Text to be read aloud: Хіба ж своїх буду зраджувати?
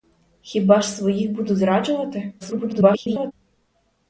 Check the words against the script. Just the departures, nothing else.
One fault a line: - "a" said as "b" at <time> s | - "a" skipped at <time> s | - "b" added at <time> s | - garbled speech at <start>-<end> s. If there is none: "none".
- garbled speech at 2.4-3.3 s